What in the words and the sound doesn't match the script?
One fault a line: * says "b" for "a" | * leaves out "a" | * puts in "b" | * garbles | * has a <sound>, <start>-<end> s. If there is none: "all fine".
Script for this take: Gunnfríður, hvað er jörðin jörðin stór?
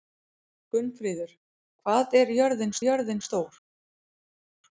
all fine